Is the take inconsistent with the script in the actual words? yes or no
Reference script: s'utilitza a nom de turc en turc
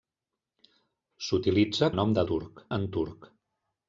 no